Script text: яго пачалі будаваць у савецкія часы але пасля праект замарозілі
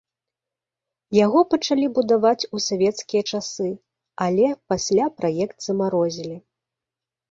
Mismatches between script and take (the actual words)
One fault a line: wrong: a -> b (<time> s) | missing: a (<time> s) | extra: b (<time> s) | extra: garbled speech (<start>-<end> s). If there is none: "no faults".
no faults